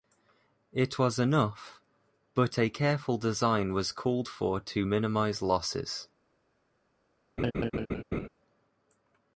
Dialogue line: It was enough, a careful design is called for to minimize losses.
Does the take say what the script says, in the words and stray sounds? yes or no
no